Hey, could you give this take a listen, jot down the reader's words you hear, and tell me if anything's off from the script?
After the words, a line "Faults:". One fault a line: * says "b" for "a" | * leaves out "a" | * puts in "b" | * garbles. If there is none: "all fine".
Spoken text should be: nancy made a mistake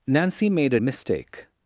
nancy made a mistake
Faults:
all fine